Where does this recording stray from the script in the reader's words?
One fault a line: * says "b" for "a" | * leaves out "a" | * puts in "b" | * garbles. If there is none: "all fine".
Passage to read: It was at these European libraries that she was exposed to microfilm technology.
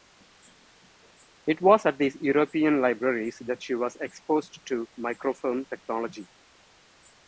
all fine